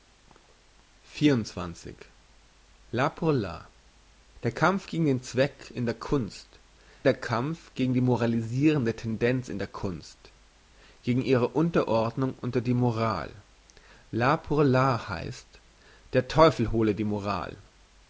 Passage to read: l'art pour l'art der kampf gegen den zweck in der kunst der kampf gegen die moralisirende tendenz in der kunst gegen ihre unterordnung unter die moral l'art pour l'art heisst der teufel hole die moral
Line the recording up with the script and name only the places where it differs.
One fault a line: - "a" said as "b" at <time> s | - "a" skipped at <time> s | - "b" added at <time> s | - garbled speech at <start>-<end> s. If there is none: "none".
none